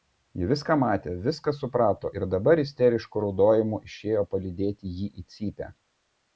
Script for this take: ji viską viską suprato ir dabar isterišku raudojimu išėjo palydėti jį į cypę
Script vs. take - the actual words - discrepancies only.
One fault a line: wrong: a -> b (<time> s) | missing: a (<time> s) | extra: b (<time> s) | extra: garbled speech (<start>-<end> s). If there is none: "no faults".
extra: matė (0.8 s)